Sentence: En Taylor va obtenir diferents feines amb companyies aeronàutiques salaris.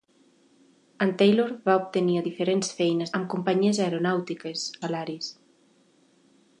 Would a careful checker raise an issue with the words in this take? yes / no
no